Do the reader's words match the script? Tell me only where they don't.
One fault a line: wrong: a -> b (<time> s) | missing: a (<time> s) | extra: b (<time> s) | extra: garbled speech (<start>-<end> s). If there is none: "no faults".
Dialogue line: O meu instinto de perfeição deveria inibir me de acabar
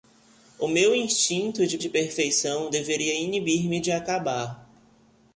extra: de (1.8 s)